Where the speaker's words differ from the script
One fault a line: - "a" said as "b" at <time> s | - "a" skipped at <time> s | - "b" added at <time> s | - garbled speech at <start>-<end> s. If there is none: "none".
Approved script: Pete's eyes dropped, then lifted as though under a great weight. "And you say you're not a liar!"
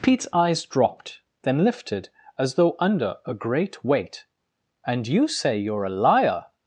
- "not" skipped at 5.8 s